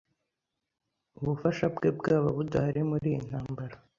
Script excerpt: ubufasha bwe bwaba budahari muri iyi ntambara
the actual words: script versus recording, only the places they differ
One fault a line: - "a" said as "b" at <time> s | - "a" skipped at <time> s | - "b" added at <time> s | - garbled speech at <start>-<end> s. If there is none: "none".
none